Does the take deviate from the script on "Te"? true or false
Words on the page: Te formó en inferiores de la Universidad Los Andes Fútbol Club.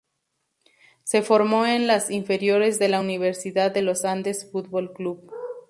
true